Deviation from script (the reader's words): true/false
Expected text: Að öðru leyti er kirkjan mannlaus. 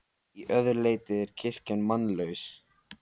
false